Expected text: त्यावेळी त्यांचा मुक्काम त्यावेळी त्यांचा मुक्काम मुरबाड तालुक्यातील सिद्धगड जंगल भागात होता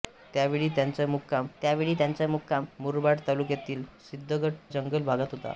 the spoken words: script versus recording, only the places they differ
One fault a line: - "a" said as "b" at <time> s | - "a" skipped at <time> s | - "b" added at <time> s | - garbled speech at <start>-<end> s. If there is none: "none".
none